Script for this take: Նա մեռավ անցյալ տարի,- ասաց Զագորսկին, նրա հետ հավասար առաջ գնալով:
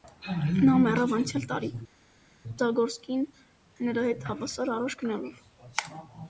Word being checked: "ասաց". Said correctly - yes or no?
no